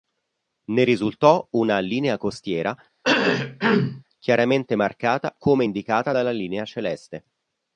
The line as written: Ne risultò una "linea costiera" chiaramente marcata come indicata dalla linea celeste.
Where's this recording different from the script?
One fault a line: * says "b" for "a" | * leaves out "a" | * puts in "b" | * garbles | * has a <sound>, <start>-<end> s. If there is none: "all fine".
* has a cough, 3.0-4.0 s